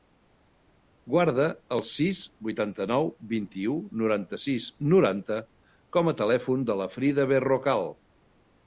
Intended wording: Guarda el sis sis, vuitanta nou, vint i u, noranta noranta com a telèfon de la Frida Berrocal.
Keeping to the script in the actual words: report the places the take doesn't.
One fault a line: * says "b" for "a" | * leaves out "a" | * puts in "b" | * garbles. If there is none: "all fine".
* leaves out "sis"
* puts in "sis"